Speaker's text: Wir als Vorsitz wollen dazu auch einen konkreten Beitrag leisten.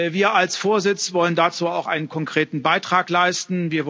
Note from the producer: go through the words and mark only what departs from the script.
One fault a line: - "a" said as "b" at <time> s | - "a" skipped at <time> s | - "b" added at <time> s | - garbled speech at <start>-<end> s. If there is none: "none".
none